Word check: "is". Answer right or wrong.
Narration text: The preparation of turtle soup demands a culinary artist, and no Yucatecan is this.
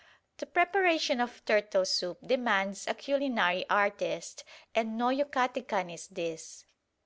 right